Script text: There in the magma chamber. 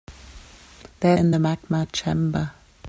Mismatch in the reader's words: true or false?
false